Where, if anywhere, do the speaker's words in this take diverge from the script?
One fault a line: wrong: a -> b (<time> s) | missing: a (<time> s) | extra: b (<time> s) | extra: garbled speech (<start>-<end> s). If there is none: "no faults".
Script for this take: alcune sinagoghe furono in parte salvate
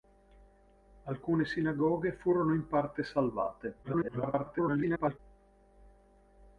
extra: garbled speech (3.8-5.2 s)